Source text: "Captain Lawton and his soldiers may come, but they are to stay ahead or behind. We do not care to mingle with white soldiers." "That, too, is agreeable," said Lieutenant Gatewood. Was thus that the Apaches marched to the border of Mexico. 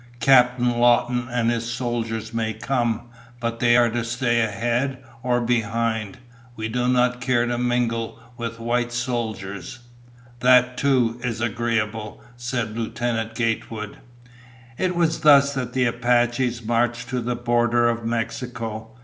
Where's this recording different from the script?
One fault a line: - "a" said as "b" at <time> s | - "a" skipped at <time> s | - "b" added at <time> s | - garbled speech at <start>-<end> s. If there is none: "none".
- "It" added at 14.8 s